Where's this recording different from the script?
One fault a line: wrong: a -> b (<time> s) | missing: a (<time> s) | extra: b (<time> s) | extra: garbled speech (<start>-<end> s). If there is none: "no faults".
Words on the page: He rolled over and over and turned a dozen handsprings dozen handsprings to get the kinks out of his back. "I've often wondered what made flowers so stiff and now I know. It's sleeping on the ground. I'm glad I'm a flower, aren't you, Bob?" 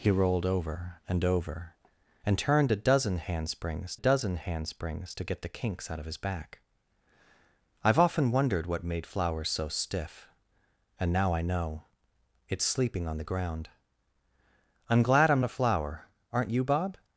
no faults